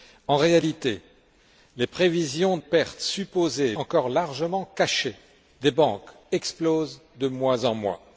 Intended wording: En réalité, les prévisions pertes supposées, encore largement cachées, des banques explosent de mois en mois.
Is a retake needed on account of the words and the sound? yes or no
no